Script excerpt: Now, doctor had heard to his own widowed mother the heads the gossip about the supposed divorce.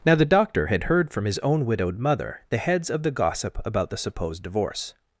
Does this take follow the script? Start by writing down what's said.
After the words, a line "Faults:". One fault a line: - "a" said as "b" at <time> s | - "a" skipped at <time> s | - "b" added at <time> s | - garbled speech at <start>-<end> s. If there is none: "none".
Now, the doctor had heard from his own widowed mother the heads of the gossip about the supposed divorce.
Faults:
- "the" added at 0.1 s
- "to" said as "from" at 1.1 s
- "of" added at 2.9 s